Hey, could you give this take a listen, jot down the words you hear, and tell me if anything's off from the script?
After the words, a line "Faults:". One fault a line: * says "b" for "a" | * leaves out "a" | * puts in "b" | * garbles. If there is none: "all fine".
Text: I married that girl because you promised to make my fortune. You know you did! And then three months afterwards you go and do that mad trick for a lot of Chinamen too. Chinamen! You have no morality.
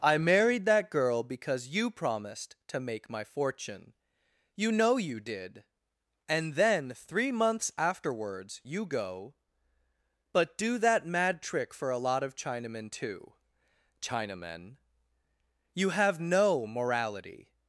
I married that girl because you promised to make my fortune. You know you did! And then three months afterwards you go but do that mad trick for a lot of Chinamen too. Chinamen! You have no morality.
Faults:
* says "but" for "and"